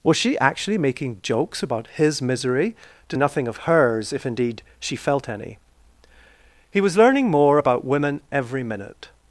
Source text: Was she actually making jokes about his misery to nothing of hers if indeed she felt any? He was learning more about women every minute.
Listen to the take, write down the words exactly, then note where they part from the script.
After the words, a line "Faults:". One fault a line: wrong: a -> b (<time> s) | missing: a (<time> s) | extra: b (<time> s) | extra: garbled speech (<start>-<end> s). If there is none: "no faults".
Was she actually making jokes about his misery to nothing of hers if indeed she felt any? He was learning more about women every minute.
Faults:
no faults